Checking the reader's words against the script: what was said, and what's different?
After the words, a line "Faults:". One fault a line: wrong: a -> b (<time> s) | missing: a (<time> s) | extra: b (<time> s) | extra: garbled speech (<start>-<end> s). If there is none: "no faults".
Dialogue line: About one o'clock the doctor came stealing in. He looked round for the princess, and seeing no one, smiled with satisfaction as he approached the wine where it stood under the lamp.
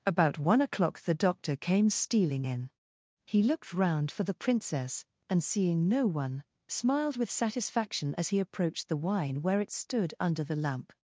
About one o'clock the doctor came stealing in. He looked round for the princess, and seeing no one, smiled with satisfaction as he approached the wine where it stood under the lamp.
Faults:
no faults